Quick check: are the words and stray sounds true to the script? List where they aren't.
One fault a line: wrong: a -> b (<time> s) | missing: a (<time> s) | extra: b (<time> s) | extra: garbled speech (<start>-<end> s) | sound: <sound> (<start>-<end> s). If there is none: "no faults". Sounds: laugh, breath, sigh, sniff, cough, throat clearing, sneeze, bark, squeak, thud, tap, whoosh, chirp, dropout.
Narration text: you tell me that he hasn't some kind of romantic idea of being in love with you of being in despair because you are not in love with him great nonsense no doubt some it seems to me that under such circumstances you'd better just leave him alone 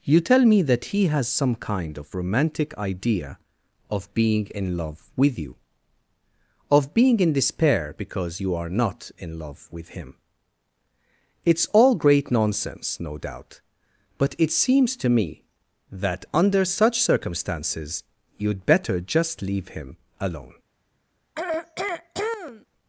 wrong: hasn't -> has (1.1 s)
extra: it's all (11.5 s)
wrong: some -> but (14.2 s)
sound: throat clearing (21.4-22.7 s)